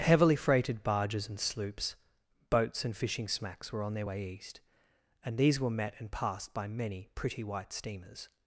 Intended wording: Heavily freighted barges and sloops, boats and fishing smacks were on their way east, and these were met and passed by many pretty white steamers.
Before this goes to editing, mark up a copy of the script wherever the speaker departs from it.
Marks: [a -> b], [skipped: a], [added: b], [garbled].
Heavily freighted barges and sloops, boats and fishing smacks were on their way east, and these were met and passed by many pretty white steamers.